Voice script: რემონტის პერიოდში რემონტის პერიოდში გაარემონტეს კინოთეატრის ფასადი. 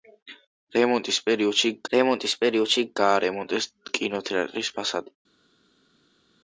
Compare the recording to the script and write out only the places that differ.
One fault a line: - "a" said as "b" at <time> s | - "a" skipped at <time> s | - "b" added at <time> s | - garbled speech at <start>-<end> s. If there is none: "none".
none